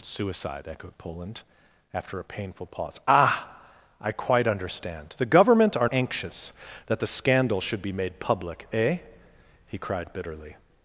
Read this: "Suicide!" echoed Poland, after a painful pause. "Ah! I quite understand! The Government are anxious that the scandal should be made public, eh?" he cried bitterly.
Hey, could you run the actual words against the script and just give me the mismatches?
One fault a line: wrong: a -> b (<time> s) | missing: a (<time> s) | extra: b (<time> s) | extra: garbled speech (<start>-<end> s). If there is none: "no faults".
no faults